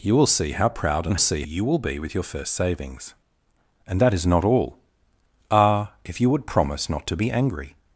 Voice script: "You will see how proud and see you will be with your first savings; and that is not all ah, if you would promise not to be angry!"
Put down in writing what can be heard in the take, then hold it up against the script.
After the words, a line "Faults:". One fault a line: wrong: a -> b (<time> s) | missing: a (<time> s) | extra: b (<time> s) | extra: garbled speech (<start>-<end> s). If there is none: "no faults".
"You will see how proud and see you will be with your first savings; and that is not all ah, if you would promise not to be angry!"
Faults:
no faults